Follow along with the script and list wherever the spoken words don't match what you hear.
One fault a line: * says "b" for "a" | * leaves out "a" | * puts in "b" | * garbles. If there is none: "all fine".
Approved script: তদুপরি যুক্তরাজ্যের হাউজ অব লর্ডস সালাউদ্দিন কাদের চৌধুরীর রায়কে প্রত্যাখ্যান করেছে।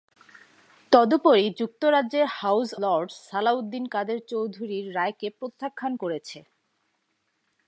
* leaves out "অব"